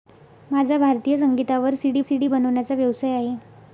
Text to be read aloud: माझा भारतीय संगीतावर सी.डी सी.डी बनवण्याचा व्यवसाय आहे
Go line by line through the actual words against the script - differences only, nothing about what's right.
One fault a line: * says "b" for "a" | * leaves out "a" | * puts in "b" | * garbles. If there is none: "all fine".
all fine